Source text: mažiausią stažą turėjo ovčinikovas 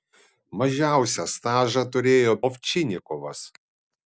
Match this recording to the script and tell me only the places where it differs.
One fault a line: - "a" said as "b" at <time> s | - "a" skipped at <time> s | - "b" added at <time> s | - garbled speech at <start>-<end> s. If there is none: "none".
none